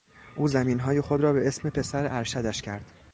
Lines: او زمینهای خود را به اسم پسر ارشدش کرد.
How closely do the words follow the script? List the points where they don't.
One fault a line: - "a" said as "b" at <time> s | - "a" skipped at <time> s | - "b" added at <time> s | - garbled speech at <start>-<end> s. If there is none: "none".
none